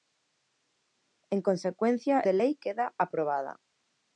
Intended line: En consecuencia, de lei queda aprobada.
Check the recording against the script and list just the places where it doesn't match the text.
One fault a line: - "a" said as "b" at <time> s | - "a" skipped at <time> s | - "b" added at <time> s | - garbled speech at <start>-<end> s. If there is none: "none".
none